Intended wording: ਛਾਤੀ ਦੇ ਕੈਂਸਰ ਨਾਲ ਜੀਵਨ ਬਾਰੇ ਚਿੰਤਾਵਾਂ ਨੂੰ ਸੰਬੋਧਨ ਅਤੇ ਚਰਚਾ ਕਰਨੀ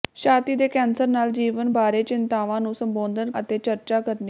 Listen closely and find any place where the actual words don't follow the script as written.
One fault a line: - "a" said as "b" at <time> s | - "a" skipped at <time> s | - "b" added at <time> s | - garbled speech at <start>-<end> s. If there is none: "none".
none